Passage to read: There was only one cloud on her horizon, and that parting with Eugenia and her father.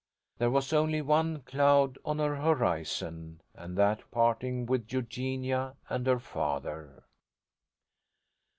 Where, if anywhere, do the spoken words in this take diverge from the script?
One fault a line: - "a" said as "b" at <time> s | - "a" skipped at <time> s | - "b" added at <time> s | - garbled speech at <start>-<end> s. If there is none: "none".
none